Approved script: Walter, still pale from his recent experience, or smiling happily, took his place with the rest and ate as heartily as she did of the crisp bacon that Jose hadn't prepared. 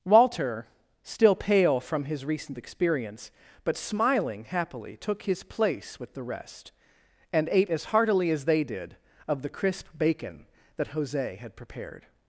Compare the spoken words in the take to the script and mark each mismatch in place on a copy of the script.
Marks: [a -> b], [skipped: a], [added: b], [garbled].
Walter, still pale from his recent experience, [or -> but] smiling happily, took his place with the rest and ate as heartily as [she -> they] did of the crisp bacon that Jose [hadn't -> had] prepared.